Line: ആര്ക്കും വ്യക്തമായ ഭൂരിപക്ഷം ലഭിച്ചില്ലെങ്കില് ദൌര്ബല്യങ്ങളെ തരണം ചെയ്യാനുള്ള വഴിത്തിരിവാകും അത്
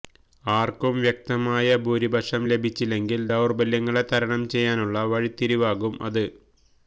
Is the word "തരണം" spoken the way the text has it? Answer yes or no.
yes